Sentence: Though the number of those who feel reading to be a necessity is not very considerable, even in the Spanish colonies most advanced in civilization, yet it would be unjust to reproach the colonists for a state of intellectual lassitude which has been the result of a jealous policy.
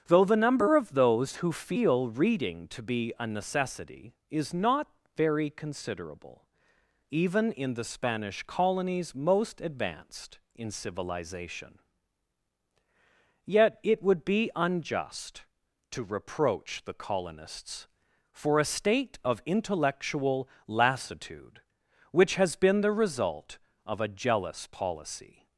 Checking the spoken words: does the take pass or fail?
pass